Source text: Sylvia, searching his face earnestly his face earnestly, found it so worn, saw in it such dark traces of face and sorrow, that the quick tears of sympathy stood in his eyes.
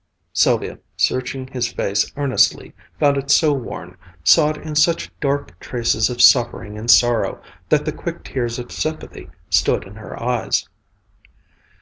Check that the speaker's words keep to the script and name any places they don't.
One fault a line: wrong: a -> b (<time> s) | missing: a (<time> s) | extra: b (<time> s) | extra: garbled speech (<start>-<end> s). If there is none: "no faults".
missing: his face earnestly (2.7 s)
wrong: face -> suffering (6.2 s)
wrong: his -> her (10.0 s)